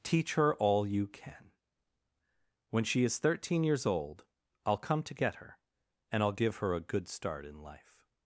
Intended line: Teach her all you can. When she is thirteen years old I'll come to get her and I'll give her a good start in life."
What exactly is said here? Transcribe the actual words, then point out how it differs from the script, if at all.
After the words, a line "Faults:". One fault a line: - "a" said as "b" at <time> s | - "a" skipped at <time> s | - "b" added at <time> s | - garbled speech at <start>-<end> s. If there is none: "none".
Teach her all you can. When she is thirteen years old I'll come to get her and I'll give her a good start in life."
Faults:
none